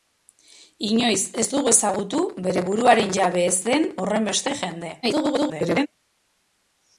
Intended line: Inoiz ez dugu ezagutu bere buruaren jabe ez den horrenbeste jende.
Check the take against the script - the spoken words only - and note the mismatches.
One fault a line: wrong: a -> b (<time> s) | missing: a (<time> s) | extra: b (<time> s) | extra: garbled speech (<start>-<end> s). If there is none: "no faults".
extra: garbled speech (5.0-5.9 s)